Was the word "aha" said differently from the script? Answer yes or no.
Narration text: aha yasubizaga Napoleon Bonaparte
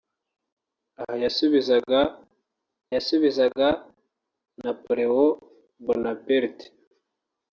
no